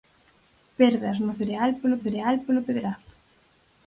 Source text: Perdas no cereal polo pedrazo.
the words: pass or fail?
fail